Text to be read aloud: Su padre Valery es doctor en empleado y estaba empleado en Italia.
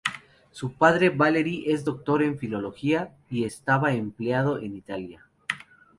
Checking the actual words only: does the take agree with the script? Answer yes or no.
no